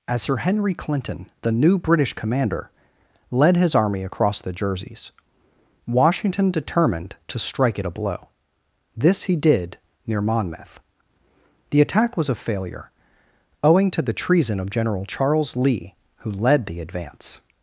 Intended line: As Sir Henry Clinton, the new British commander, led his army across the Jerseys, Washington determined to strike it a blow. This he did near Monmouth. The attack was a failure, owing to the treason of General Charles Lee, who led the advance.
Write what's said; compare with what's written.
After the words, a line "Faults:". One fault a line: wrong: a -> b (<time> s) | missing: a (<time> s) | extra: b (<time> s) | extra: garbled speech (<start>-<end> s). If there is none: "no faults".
As Sir Henry Clinton, the new British commander, led his army across the Jerseys, Washington determined to strike it a blow. This he did near Monmouth. The attack was a failure, owing to the treason of General Charles Lee, who led the advance.
Faults:
no faults